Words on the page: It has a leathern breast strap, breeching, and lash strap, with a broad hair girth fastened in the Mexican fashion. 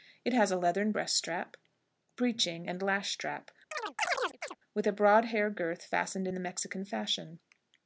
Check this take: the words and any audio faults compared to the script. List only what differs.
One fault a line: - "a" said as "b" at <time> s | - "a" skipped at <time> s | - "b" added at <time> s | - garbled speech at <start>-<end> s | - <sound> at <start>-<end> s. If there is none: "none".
- chirp at 3.7-4.6 s